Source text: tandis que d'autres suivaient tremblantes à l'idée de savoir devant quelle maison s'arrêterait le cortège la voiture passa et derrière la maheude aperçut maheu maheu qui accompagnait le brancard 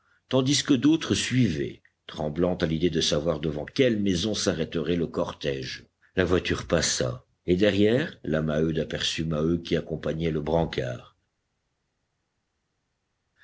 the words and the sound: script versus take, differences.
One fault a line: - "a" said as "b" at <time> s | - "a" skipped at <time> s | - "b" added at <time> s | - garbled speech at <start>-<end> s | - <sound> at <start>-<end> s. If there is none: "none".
- "maheu" skipped at 9.6 s